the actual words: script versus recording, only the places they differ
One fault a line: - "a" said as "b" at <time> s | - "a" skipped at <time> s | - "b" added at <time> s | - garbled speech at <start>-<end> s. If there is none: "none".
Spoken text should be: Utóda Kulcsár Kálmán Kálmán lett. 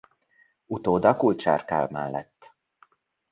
- "Kálmán" skipped at 2.1 s